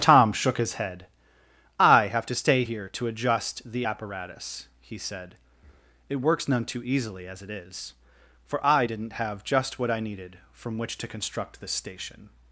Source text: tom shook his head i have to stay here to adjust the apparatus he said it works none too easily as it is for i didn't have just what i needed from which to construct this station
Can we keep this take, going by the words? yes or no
yes